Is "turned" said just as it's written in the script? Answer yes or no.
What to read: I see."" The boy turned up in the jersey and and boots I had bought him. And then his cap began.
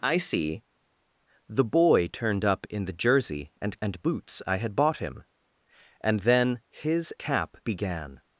yes